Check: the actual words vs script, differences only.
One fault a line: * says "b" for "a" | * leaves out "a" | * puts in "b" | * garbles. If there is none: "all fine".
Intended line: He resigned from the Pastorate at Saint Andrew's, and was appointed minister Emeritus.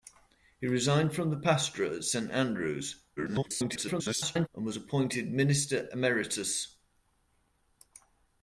* garbles